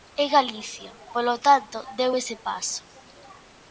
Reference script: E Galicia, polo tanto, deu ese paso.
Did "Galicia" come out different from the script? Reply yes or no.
no